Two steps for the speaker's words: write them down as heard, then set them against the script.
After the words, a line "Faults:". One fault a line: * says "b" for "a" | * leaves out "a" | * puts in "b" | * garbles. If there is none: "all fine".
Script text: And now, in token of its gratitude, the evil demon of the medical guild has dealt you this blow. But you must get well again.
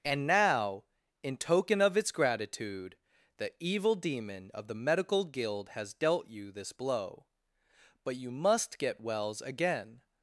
And now, in token of its gratitude, the evil demon of the medical guild has dealt you this blow. But you must get wells again.
Faults:
* says "wells" for "well"